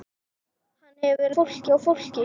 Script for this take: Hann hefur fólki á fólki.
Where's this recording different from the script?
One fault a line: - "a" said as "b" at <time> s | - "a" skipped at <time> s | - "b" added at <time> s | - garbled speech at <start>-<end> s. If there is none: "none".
none